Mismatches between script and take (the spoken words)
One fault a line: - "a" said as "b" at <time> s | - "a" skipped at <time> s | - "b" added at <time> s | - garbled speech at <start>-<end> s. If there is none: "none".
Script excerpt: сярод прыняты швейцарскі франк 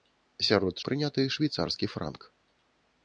none